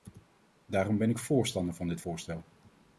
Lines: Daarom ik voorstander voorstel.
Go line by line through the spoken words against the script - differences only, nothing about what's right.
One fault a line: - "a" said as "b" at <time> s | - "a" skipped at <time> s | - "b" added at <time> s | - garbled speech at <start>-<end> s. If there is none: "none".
- "ben" added at 1.0 s
- "van dit" added at 1.7 s